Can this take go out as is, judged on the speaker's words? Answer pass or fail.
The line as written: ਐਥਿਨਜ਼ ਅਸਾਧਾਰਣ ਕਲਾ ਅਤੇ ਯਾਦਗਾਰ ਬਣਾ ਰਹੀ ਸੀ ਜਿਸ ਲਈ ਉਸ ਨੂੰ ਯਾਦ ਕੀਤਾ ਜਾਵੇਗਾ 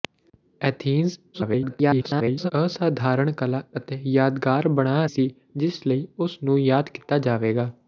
fail